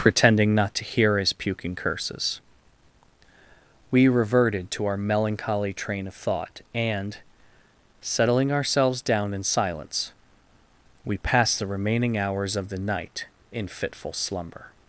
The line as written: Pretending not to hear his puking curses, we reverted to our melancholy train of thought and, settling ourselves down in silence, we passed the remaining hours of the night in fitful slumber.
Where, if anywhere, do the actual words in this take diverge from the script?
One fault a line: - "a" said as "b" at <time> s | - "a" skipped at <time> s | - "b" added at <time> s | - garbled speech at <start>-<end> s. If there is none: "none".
none